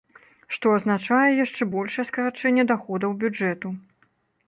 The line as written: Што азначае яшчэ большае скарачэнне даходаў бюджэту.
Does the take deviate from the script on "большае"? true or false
false